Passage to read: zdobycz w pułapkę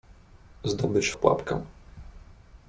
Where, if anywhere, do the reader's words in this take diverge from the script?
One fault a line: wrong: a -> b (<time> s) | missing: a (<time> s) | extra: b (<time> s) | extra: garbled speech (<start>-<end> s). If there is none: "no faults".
no faults